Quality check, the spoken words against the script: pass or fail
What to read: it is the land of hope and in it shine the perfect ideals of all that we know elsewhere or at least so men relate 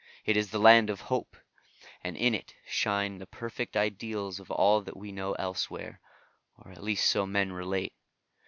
pass